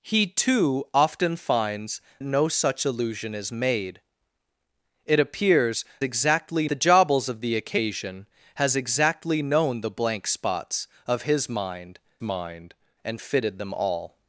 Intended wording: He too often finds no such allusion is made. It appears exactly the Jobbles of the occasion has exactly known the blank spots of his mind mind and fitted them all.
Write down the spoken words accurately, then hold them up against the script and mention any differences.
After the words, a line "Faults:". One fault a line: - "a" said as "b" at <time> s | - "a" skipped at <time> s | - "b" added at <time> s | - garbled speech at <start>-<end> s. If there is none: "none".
He too often finds no such allusion is made. It appears exactly the Jobbles of the occasion has exactly known the blank spots of his mind mind and fitted them all.
Faults:
none